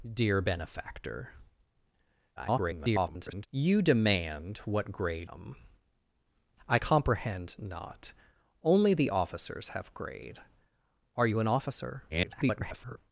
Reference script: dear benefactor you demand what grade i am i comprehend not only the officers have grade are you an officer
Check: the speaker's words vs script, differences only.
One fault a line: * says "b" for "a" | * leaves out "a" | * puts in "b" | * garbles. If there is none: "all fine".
* garbles
* leaves out "i"
* garbles